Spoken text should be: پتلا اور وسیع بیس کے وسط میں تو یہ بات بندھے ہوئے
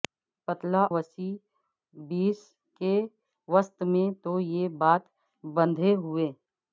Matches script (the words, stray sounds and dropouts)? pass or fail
fail